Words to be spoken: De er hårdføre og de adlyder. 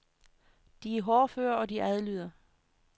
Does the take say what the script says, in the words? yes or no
yes